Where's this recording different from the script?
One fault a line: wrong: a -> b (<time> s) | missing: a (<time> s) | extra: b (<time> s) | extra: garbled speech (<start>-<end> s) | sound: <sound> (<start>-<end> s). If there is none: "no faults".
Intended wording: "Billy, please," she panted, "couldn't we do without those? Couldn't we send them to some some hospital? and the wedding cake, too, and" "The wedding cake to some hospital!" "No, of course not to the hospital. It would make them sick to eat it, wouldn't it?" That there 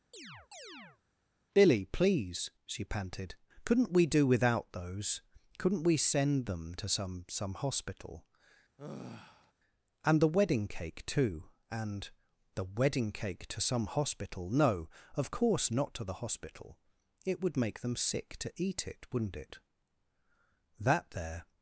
sound: chirp (0.1-1.0 s)
sound: sigh (8.8-9.5 s)